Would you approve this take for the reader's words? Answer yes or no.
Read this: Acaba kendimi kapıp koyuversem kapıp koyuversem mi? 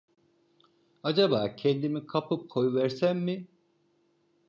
no